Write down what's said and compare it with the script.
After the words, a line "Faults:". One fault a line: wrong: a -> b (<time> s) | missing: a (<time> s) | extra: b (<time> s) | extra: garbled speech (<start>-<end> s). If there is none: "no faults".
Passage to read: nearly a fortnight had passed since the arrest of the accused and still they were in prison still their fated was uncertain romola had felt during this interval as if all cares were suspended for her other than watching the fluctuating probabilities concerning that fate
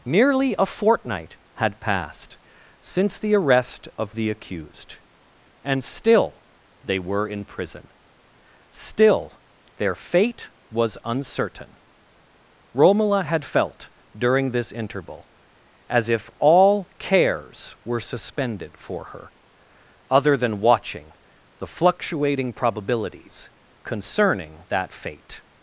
nearly a fortnight had passed since the arrest of the accused and still they were in prison still their fate was uncertain romola had felt during this interval as if all cares were suspended for her other than watching the fluctuating probabilities concerning that fate
Faults:
wrong: fated -> fate (9.9 s)